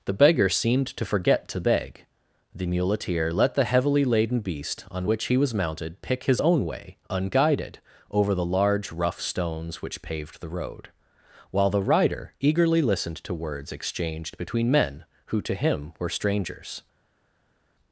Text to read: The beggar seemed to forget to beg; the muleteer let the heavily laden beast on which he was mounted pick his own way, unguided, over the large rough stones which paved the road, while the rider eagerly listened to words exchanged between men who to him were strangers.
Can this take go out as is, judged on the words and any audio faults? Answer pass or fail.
pass